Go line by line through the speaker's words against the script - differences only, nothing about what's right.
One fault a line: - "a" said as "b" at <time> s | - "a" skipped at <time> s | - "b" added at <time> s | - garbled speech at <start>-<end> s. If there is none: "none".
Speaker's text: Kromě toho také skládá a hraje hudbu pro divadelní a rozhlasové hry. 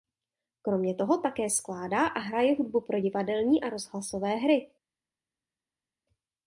none